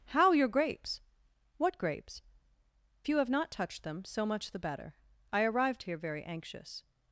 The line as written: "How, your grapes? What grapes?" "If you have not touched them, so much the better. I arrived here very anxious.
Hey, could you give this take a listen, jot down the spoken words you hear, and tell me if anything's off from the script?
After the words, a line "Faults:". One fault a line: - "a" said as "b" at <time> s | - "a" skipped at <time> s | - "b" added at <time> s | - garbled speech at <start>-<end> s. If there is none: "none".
"How, your grapes? What grapes?" "You have not touched them, so much the better. I arrived here very anxious.
Faults:
- "If" skipped at 2.2 s